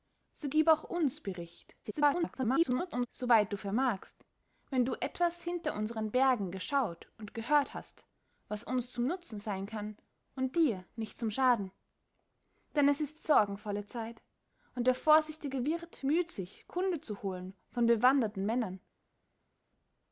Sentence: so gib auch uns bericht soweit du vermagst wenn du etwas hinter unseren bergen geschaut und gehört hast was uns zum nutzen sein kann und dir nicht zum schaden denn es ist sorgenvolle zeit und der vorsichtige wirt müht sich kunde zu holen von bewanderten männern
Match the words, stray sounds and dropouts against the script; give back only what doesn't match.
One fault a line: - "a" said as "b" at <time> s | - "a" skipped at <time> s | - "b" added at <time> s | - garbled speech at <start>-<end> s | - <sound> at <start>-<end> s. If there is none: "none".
- garbled speech at 1.8-3.1 s